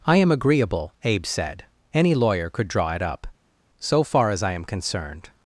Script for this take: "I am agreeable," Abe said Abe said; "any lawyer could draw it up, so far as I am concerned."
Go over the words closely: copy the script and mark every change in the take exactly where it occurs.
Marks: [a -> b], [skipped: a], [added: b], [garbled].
"I am agreeable," Abe said [skipped: Abe said;] "any lawyer could draw it up, so far as I am concerned."